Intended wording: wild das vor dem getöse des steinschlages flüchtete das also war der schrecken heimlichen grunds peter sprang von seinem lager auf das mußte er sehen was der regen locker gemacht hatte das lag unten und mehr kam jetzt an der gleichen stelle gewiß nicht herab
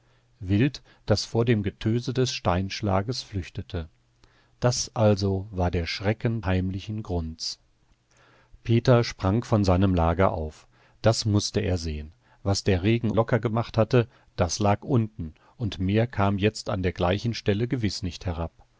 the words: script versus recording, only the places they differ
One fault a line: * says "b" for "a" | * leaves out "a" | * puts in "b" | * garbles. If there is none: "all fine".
all fine